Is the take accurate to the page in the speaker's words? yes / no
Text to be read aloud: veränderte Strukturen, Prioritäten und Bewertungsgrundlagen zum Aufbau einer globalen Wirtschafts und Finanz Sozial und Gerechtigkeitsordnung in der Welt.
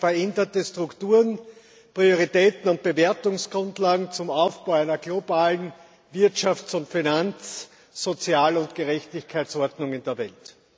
yes